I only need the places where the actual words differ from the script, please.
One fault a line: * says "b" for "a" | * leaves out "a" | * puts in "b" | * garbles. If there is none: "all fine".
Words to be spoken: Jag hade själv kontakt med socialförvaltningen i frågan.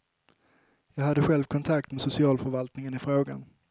all fine